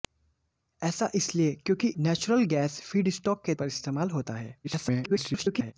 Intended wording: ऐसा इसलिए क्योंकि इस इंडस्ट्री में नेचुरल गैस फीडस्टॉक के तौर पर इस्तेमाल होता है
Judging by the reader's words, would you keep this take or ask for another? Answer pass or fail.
fail